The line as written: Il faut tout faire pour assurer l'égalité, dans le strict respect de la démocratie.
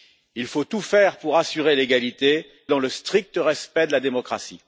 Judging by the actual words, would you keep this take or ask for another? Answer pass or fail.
pass